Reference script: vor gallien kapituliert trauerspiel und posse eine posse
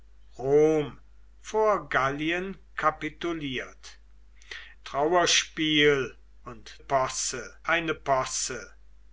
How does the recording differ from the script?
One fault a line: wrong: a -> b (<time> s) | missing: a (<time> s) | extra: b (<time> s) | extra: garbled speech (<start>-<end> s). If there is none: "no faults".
no faults